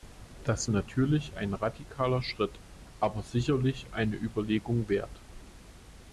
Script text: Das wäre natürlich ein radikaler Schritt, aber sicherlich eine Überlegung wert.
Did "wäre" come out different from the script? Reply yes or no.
yes